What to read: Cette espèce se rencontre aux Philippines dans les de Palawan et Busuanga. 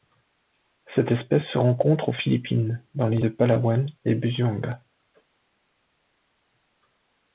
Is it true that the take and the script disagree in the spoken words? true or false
false